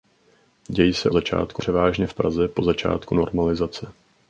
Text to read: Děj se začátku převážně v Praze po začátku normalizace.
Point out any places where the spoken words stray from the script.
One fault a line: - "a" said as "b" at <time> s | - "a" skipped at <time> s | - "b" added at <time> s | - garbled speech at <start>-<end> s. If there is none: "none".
none